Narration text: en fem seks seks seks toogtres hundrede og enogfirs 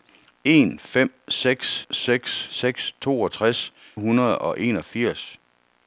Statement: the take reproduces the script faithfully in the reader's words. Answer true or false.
true